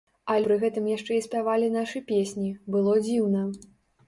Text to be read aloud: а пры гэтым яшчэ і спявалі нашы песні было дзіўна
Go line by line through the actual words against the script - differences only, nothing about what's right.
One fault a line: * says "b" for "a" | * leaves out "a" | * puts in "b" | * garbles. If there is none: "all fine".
all fine